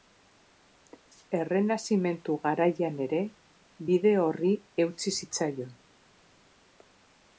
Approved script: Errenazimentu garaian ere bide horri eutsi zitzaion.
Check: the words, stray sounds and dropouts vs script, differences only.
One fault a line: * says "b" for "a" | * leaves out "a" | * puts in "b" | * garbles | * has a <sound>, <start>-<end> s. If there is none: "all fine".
all fine